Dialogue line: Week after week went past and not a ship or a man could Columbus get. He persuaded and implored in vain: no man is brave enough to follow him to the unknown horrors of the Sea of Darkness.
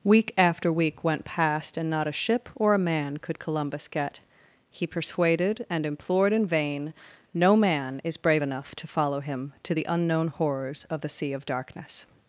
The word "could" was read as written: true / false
true